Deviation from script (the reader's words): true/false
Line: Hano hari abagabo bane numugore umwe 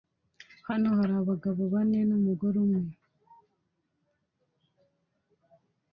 false